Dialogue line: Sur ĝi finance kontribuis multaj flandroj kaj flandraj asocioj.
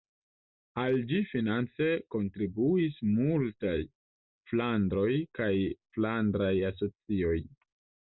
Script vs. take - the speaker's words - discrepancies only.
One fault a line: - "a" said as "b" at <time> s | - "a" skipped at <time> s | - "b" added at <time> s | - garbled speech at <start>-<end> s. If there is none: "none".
- "Sur" said as "Al" at 0.8 s